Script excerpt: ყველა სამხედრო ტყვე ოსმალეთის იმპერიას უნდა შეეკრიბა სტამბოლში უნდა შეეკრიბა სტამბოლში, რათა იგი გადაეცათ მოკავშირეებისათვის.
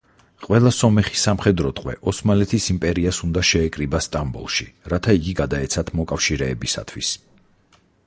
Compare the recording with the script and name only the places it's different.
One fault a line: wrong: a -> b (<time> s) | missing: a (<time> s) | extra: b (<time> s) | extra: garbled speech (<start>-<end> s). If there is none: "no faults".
extra: სომეხი (0.8 s)
missing: უნდა შეეკრიბა სტამბოლში (4.7 s)